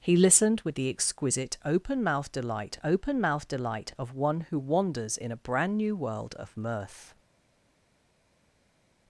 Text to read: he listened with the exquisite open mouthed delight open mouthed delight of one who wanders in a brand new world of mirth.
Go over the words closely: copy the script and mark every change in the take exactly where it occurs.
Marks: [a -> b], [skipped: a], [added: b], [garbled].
he listened with the exquisite open mouthed delight open mouthed delight of one who wanders in a brand new world of mirth.